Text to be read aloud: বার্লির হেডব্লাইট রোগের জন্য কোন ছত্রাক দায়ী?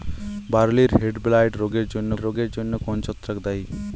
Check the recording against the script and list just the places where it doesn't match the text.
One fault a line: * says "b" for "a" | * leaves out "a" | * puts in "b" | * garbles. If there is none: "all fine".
* puts in "রোগের জন্য"